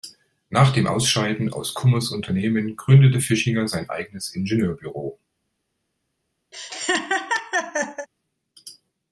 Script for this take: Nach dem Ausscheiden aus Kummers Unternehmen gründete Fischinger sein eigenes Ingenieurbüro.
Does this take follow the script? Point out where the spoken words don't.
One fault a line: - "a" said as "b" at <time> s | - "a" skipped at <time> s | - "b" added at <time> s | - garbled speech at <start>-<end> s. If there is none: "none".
none